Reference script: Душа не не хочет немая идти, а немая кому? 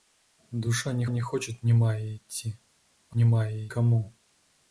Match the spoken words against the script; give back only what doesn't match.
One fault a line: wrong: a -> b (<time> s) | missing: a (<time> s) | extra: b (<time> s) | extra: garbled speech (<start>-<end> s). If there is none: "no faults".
no faults